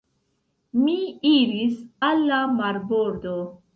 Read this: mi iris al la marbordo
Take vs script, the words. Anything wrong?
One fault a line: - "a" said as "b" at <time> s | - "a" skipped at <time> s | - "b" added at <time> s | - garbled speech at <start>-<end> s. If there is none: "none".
none